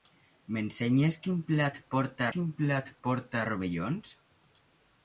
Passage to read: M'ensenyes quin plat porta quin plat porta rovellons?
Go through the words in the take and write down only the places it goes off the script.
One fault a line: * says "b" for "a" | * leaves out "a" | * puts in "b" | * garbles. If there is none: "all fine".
all fine